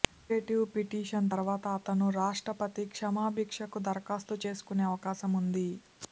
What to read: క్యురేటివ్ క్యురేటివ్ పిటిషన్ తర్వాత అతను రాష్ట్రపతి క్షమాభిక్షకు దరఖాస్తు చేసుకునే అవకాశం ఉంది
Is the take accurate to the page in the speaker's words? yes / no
no